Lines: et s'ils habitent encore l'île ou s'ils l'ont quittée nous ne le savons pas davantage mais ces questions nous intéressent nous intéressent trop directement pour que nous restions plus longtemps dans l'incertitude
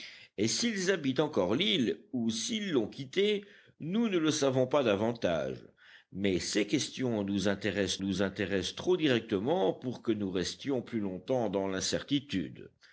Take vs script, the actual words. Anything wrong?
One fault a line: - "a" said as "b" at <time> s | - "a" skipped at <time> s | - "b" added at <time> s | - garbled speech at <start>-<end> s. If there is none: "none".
none